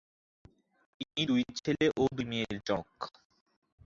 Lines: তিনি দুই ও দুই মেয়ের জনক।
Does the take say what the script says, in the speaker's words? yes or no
no